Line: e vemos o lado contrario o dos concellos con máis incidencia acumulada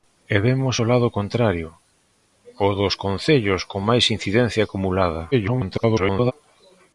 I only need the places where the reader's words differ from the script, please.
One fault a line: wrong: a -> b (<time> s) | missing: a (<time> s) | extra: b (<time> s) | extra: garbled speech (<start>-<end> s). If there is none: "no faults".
extra: garbled speech (5.3-6.3 s)